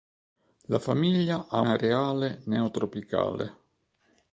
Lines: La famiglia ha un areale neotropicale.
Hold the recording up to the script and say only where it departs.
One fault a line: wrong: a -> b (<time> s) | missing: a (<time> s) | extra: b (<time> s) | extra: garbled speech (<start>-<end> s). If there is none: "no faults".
missing: un (1.6 s)